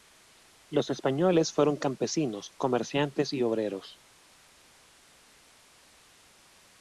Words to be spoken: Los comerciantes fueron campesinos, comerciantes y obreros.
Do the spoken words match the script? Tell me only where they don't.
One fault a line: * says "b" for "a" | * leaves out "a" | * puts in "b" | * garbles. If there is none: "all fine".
* says "españoles" for "comerciantes"